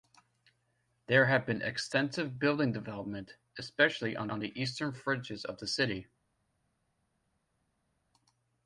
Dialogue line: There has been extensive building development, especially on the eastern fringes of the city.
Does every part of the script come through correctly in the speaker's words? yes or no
no